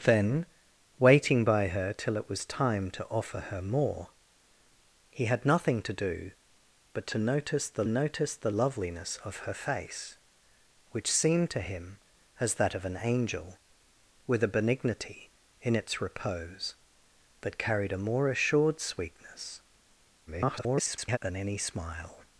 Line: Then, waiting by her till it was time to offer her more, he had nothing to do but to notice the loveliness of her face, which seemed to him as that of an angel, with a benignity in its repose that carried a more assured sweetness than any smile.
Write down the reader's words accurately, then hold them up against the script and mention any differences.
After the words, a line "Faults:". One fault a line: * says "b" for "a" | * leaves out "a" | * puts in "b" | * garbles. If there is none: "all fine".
Then, waiting by her till it was time to offer her more, he had nothing to do but to notice the notice the loveliness of her face, which seemed to him as that of an angel, with a benignity in its repose that carried a more assured sweetness [garbled] than any smile.
Faults:
* puts in "notice the"
* garbles